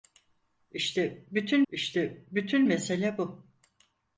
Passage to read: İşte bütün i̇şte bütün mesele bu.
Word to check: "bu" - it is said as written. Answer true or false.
true